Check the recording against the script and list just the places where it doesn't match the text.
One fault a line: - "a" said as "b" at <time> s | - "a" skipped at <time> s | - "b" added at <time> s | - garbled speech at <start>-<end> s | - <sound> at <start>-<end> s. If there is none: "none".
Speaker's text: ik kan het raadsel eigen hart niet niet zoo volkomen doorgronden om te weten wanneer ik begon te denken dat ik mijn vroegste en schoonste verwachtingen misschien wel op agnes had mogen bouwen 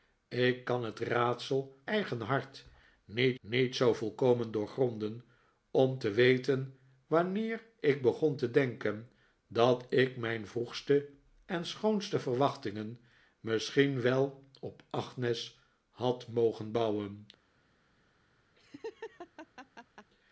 - laugh at 18.6-20.1 s